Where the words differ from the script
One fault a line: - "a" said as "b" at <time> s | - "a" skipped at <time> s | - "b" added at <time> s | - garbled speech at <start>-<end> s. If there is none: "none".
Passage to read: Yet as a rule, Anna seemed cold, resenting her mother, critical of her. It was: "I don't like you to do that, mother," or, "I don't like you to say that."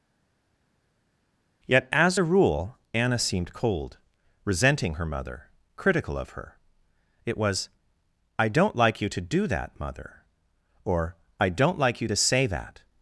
none